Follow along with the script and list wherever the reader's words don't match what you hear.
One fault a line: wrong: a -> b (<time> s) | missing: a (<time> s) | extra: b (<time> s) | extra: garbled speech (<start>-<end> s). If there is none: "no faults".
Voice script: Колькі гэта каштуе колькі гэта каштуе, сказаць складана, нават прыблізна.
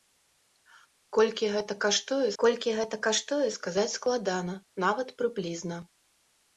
no faults